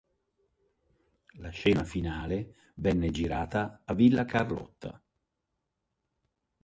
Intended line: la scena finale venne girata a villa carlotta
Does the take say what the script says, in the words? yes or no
yes